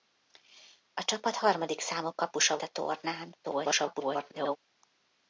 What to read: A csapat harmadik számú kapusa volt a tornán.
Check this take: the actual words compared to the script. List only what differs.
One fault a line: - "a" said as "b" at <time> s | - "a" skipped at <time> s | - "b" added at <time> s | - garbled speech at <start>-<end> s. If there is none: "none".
- "volt" skipped at 2.6 s
- garbled speech at 3.4-4.6 s